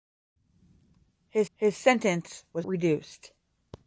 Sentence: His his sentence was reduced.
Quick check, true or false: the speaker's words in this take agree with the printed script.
true